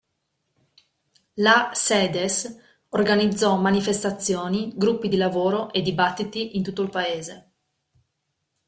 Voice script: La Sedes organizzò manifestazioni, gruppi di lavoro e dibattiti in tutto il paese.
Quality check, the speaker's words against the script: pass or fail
pass